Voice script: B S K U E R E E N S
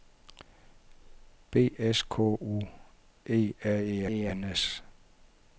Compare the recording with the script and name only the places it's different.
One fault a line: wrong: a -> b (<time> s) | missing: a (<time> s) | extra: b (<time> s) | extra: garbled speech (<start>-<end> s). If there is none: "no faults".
no faults